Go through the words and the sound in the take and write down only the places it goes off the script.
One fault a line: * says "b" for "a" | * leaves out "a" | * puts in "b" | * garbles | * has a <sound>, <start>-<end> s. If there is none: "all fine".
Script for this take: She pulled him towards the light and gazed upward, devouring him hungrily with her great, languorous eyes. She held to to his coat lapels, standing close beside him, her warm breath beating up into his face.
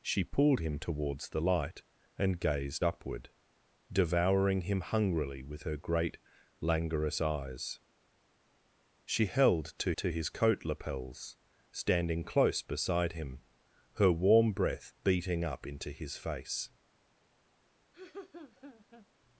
* has a laugh, 17.9-19.1 s